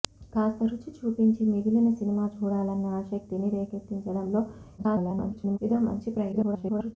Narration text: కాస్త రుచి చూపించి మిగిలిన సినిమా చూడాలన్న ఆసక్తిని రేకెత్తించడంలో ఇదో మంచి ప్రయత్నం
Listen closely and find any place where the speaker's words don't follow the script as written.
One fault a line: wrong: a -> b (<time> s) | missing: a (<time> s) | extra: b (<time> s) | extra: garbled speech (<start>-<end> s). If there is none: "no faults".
extra: garbled speech (4.8-5.6 s)
extra: garbled speech (6.3-7.0 s)